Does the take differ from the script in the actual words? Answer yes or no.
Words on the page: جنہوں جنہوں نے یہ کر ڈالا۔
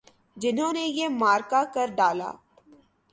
yes